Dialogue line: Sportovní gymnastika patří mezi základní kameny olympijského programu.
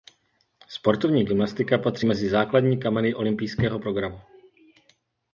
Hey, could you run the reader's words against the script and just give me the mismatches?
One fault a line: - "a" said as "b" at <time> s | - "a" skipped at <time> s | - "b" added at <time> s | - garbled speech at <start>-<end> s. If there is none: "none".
none